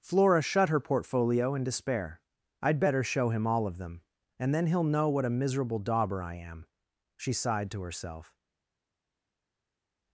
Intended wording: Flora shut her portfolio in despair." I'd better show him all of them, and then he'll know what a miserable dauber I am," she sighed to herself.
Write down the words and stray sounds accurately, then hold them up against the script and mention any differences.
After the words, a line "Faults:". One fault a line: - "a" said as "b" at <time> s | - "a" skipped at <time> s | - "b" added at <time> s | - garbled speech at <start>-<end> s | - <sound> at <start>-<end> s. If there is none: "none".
Flora shut her portfolio in despair." I'd better show him all of them, and then he'll know what a miserable dauber I am," she sighed to herself.
Faults:
none